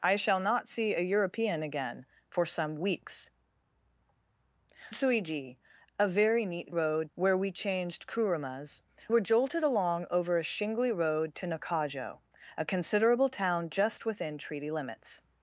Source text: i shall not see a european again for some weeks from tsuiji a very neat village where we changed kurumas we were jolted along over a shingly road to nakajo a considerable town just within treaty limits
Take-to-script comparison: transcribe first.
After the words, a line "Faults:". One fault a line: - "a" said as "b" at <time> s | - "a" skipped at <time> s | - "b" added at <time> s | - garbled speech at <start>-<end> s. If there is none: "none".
i shall not see a european again for some weeks tsuiji a very neat road where we changed kurumas were jolted along over a shingly road to nakajo a considerable town just within treaty limits
Faults:
- "from" skipped at 3.3 s
- "village" said as "road" at 6.7 s
- "we" skipped at 8.8 s